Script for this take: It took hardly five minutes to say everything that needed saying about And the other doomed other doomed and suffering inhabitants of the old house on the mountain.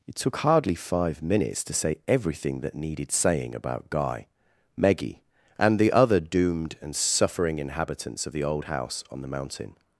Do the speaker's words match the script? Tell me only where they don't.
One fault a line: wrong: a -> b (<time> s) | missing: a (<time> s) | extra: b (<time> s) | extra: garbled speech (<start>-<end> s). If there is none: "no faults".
extra: Guy Meggie (3.9 s)
missing: other doomed (6.8 s)